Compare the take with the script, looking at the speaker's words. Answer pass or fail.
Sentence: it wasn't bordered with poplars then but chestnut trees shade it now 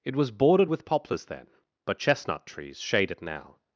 fail